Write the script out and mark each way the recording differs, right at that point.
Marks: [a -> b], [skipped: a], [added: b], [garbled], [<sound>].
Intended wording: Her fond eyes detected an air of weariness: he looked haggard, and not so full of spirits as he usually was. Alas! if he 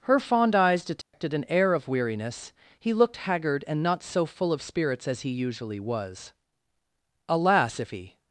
Her fond eyes detected [dropout] an air of weariness: he looked haggard, and not so full of spirits as he usually was. Alas! if he